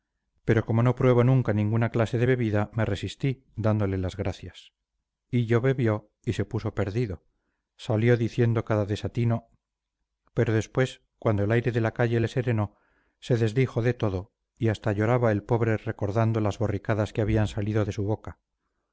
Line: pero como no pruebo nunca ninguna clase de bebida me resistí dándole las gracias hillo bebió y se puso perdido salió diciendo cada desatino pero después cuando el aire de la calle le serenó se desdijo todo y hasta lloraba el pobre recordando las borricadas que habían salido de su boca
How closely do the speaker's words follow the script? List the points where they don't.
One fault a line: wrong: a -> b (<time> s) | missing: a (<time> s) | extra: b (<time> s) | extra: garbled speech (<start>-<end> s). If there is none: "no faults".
extra: de (13.8 s)